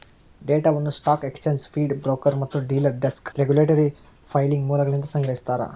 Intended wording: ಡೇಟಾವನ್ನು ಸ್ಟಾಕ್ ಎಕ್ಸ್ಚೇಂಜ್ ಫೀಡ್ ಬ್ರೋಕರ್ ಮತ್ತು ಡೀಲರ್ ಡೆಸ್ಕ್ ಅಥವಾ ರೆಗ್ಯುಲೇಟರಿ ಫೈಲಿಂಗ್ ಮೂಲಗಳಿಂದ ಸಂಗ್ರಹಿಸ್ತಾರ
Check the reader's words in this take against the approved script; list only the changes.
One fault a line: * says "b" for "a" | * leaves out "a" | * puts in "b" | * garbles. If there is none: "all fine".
* leaves out "ಅಥವಾ"